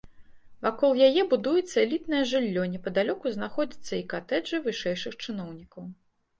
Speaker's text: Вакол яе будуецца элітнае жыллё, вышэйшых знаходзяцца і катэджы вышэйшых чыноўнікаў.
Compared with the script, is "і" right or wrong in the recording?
right